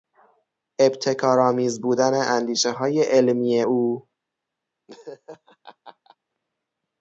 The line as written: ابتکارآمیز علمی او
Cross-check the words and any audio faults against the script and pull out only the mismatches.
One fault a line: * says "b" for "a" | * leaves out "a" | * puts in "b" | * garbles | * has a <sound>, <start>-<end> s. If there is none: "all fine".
* puts in "بودن اندیشههای"
* has a laugh, 4.9-6.2 s